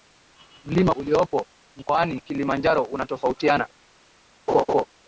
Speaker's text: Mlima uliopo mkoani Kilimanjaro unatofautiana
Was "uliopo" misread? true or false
false